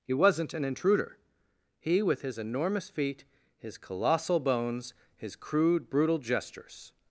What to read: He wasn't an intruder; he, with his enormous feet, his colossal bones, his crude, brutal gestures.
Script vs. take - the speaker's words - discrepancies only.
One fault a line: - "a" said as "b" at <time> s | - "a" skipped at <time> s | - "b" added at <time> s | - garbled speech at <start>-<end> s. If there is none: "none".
none